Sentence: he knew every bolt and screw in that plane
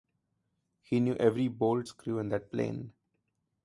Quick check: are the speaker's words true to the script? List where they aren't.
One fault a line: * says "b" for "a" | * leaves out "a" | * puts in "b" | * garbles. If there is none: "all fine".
* leaves out "and"